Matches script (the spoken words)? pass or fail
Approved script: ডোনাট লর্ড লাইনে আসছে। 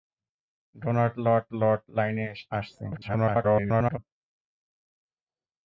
fail